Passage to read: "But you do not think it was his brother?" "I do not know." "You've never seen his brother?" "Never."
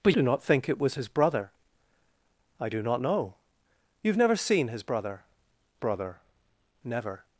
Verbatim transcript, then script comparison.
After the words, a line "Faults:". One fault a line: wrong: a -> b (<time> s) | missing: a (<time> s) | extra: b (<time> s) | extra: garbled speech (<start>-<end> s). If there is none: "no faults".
"But do not think it was his brother?" "I do not know." "You've never seen his brother brother?" "Never."
Faults:
missing: you (0.1 s)
extra: brother (5.8 s)